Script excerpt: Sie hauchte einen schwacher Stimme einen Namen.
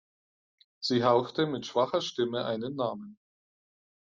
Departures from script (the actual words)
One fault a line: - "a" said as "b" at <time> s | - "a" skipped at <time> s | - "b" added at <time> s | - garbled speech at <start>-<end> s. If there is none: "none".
- "einen" said as "mit" at 1.4 s